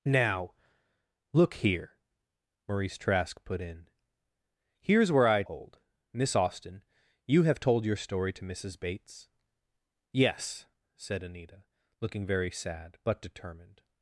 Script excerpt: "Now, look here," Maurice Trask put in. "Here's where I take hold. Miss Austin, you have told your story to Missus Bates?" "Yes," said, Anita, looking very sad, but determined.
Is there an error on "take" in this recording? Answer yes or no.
yes